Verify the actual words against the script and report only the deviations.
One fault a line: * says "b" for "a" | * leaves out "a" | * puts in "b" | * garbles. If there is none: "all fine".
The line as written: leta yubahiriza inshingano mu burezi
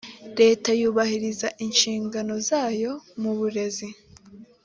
* puts in "zayo"